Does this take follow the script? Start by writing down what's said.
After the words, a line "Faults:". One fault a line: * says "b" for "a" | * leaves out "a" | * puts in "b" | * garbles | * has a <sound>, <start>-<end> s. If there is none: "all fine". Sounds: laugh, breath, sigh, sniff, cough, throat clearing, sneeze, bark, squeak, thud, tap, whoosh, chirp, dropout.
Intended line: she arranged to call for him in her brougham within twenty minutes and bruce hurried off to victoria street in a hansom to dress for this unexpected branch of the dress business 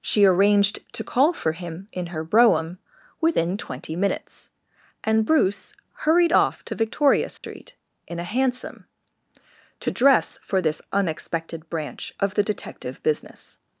she arranged to call for him in her brougham within twenty minutes and bruce hurried off to victoria street in a hansom to dress for this unexpected branch of the detective business
Faults:
* has a dropout, 7.4-7.4 s
* says "detective" for "dress"